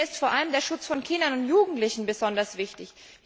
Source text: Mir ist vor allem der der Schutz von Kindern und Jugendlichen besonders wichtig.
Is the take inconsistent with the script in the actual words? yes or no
yes